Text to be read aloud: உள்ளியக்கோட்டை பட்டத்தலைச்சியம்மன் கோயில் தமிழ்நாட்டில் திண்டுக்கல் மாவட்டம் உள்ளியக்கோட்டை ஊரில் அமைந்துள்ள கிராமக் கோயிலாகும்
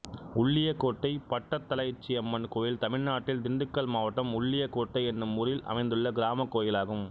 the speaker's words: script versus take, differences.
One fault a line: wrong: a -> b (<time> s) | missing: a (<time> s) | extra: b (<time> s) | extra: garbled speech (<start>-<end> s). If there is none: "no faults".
extra: என்னும் (5.1 s)